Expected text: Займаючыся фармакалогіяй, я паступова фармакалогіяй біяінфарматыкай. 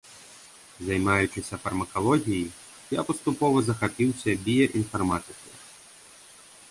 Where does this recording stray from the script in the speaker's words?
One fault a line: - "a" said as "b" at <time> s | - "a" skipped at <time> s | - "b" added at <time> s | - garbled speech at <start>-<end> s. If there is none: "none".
- "фармакалогіяй" said as "захапіўся" at 3.7 s